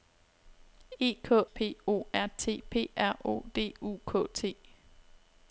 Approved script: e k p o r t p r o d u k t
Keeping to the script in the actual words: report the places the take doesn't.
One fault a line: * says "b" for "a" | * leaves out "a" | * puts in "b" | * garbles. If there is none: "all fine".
all fine